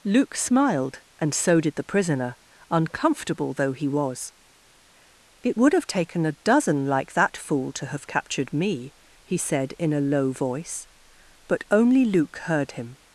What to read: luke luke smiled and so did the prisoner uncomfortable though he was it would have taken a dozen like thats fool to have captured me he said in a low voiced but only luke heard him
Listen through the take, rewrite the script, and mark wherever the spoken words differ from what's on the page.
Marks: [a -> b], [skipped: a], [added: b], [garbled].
luke [skipped: luke] smiled and so did the prisoner uncomfortable though he was it would have taken a dozen like [thats -> that] fool to have captured me he said in a low [voiced -> voice] but only luke heard him